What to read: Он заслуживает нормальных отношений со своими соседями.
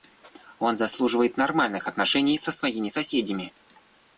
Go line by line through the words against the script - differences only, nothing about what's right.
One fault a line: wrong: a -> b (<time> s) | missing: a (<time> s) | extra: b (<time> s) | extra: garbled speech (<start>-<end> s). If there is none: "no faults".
no faults